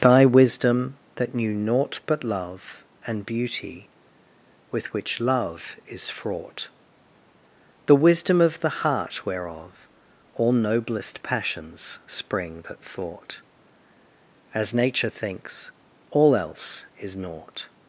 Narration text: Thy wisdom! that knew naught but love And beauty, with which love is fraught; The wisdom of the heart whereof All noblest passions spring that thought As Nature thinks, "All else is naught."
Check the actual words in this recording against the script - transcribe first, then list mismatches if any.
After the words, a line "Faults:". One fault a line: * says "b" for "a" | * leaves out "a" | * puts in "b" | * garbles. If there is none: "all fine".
Thy wisdom! that knew naught but love And beauty, with which love is fraught; The wisdom of the heart whereof All noblest passions spring that thought As Nature thinks, "All else is naught."
Faults:
all fine